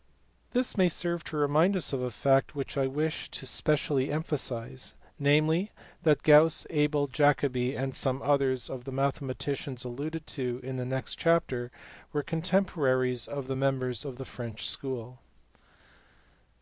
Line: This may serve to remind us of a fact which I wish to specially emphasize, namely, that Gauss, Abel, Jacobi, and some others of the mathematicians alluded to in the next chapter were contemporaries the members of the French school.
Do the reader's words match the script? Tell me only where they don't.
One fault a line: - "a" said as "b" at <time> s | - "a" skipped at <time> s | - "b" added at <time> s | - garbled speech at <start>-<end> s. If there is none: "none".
- "of" added at 13.3 s